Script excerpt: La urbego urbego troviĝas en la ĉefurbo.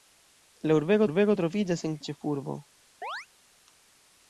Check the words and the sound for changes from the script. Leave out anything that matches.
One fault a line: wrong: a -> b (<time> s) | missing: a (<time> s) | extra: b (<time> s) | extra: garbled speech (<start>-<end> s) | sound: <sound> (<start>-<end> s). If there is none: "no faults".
sound: chirp (3.0-3.3 s)